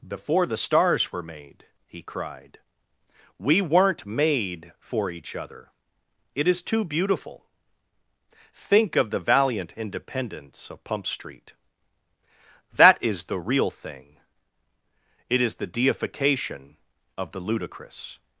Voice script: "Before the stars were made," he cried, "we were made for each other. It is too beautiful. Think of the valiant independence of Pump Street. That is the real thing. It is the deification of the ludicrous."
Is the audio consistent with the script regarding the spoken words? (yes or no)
no